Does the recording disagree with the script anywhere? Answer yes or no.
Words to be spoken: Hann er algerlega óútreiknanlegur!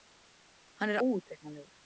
yes